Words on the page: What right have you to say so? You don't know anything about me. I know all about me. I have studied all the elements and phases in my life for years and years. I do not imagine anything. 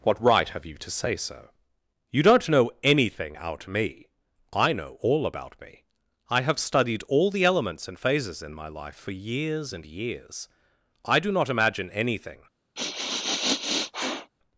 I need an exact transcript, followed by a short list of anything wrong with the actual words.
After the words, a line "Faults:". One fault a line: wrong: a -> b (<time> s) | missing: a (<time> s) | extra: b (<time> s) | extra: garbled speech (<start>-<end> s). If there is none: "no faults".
What right have you to say so? You don't know anything out me. I know all about me. I have studied all the elements and phases in my life for years and years. I do not imagine anything.
Faults:
wrong: about -> out (3.3 s)